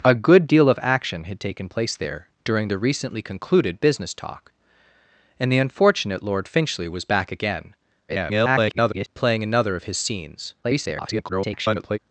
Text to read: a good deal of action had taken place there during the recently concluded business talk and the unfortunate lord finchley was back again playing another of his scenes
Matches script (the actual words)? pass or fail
fail